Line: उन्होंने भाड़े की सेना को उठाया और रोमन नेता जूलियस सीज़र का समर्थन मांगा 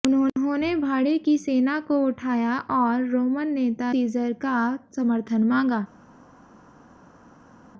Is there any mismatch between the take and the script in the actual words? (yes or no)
yes